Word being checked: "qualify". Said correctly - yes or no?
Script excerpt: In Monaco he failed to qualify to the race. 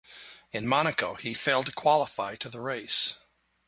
yes